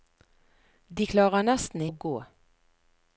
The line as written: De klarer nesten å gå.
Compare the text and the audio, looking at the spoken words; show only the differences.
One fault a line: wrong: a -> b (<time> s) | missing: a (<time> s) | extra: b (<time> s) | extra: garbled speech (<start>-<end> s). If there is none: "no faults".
no faults